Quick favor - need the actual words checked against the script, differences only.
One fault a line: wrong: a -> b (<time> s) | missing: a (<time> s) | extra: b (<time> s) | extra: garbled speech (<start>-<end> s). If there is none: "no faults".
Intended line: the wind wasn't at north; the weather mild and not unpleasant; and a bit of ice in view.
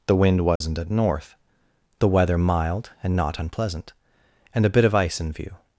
no faults